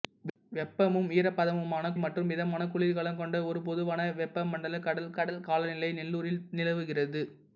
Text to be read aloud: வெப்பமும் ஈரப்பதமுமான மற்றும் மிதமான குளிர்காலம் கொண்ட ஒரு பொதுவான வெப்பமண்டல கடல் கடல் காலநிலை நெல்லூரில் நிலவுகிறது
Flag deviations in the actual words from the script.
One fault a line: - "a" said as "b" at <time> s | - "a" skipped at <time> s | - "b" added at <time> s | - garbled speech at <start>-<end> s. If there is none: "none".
none